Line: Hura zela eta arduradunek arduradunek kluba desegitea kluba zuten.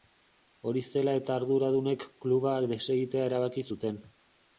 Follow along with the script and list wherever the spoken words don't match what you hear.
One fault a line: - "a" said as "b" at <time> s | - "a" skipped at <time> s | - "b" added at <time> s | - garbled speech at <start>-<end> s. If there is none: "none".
- "Hura" said as "Hori" at 0.7 s
- "arduradunek" skipped at 2.0 s
- "kluba" said as "erabaki" at 3.3 s